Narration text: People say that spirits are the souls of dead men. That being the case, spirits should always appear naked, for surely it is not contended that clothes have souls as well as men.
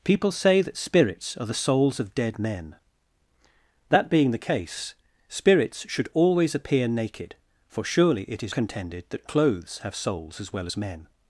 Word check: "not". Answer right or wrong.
wrong